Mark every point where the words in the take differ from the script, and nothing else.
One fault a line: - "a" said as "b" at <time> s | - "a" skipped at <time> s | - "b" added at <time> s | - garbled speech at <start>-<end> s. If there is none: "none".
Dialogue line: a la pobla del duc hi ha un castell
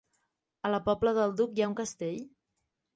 none